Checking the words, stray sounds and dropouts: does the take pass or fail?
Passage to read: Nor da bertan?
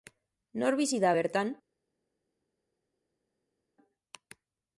fail